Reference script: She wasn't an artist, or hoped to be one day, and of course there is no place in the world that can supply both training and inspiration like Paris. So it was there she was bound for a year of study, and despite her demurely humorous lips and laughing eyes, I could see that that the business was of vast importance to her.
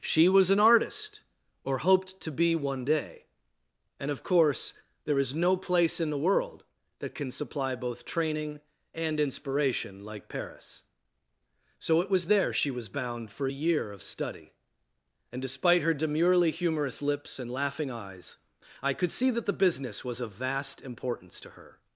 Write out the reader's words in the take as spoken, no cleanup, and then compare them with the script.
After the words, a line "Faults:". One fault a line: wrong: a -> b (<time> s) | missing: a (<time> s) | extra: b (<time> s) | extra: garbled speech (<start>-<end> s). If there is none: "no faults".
She was an artist, or hoped to be one day, and of course there is no place in the world that can supply both training and inspiration like Paris. So it was there she was bound for a year of study, and despite her demurely humorous lips and laughing eyes, I could see that the business was of vast importance to her.
Faults:
wrong: wasn't -> was (0.3 s)
missing: that (19.5 s)